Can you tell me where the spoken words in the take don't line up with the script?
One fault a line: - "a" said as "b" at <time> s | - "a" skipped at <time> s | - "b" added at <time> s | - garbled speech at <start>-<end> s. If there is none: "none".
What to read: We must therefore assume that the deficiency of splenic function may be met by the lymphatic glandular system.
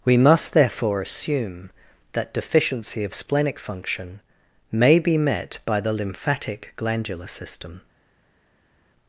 - "the" skipped at 2.3 s